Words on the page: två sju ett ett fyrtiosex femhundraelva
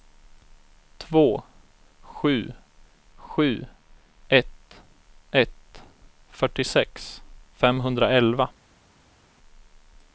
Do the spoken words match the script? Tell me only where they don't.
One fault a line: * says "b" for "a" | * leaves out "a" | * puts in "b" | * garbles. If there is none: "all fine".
* puts in "sju"